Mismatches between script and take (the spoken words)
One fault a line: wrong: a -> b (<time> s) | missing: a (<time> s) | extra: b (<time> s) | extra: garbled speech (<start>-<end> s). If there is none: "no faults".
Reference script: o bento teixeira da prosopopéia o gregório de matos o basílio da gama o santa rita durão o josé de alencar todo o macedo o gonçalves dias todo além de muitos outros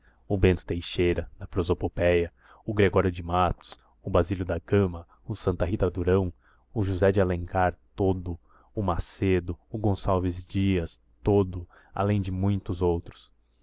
no faults